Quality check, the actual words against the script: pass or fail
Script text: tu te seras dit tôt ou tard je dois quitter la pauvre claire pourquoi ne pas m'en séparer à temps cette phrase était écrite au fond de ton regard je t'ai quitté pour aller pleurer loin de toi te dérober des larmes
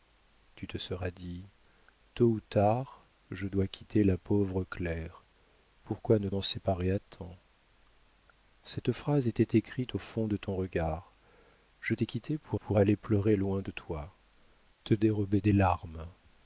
fail